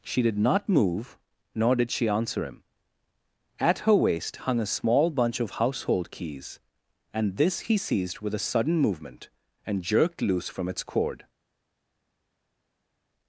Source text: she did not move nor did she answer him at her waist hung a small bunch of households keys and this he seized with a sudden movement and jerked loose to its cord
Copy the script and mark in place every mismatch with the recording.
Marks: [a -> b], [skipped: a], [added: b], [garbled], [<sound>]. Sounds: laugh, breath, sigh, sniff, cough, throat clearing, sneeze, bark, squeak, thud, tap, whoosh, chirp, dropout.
she did not move nor did she answer him at her waist hung a small bunch of [households -> household] keys and this he seized with a sudden movement and jerked loose [to -> from] its cord